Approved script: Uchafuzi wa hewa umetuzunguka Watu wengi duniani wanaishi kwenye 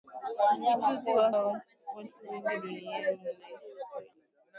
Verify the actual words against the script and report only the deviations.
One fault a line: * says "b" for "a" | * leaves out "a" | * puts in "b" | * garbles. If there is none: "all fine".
* leaves out "hewa umetuzunguka"